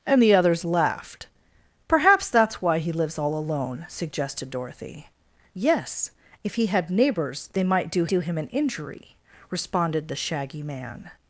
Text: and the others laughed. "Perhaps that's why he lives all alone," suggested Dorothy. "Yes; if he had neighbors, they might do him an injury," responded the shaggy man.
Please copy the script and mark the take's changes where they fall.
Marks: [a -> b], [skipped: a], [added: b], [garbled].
and the others laughed. "Perhaps that's why he lives all alone," suggested Dorothy. "Yes; if he had neighbors, they might do [added: do] him an injury," responded the shaggy man.